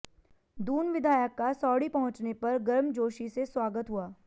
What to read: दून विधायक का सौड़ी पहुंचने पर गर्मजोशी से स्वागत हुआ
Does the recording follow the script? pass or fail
pass